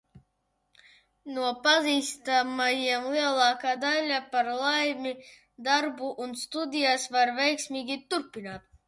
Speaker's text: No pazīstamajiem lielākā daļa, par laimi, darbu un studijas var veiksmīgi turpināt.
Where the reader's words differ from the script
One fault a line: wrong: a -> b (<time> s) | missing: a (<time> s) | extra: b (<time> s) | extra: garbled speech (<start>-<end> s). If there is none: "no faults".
no faults